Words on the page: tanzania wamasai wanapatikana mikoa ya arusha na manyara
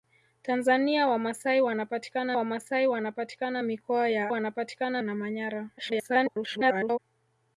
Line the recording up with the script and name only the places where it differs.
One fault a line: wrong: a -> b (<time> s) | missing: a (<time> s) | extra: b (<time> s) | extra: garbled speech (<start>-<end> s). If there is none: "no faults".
extra: wamasai wanapatikana (2.3 s)
wrong: arusha -> wanapatikana (4.3 s)
extra: garbled speech (5.8-7.0 s)